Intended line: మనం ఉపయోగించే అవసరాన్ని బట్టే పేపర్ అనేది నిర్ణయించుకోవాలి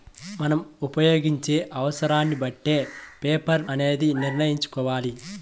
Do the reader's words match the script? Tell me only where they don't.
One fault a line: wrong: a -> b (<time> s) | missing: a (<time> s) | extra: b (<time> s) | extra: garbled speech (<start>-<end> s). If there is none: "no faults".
no faults